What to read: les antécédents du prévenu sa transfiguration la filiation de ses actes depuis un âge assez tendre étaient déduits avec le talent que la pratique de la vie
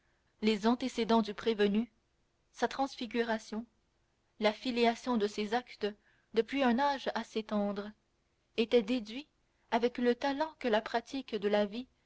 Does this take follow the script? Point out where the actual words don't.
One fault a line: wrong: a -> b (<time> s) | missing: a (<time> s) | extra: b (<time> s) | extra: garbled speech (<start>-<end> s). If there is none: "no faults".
no faults